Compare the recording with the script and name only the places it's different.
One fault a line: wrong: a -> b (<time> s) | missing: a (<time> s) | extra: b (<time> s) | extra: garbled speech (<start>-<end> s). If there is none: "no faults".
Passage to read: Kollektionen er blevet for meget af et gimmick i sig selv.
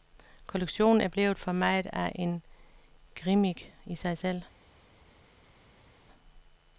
wrong: et -> en (2.1 s)